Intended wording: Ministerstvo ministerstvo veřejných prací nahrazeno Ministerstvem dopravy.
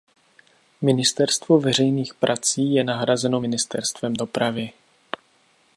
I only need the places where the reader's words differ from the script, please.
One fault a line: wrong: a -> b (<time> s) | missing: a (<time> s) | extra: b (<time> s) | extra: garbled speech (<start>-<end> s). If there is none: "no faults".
missing: ministerstvo (1.6 s)
extra: je (2.7 s)